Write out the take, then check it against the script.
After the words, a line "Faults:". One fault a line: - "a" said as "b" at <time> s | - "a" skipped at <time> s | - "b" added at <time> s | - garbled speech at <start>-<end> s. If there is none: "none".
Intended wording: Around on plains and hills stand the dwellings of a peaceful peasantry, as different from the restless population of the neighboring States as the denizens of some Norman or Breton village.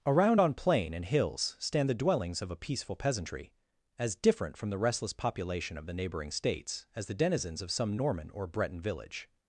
Around on plain and hills stand the dwellings of a peaceful peasantry, as different from the restless population of the neighboring States as the denizens of some Norman or Breton village.
Faults:
- "plains" said as "plain" at 0.5 s